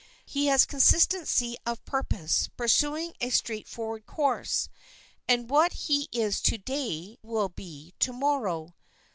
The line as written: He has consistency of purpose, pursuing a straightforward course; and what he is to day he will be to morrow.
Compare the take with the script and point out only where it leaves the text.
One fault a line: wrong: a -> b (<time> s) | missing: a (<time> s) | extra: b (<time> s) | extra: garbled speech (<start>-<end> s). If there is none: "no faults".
missing: he (7.2 s)